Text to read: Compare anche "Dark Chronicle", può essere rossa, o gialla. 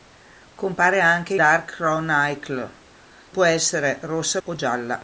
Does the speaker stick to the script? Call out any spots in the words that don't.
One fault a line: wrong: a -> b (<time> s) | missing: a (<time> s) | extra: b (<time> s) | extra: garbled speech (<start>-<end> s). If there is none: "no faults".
no faults